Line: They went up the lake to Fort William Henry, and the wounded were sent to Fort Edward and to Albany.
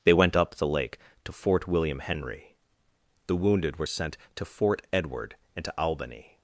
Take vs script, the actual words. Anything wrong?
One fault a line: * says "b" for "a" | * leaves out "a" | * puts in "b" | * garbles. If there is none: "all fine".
* leaves out "and"